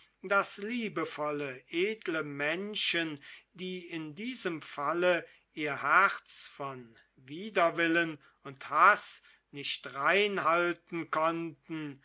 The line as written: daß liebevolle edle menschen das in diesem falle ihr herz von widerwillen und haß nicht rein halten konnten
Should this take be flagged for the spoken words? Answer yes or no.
yes